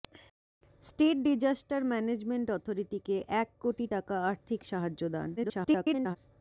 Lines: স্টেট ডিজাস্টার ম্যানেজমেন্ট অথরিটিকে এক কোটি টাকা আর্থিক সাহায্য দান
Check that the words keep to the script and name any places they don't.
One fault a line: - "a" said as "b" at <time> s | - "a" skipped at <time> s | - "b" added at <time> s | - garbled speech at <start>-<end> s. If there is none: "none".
- garbled speech at 5.4-6.2 s